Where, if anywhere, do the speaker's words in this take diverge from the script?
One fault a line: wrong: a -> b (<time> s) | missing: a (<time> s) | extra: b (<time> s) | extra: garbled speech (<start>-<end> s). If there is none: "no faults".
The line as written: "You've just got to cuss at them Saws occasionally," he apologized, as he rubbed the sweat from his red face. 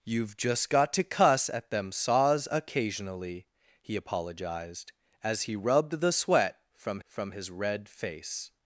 extra: from (7.0 s)